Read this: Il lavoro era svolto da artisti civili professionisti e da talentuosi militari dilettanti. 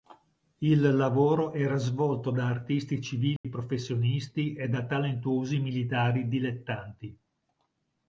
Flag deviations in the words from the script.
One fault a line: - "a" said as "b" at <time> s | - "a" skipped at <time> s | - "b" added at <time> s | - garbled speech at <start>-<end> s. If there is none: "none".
none